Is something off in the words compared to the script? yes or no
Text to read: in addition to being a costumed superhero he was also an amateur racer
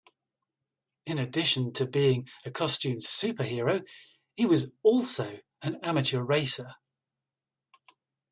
no